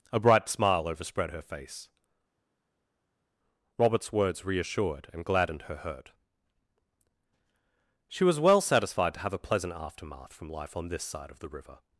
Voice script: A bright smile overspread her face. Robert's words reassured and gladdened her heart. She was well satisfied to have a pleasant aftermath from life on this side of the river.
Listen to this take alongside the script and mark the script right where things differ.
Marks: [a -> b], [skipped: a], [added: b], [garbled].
A bright smile overspread her face. Robert's words reassured and gladdened her [heart. -> hurt] She was well satisfied to have a pleasant aftermath from life on this side of the river.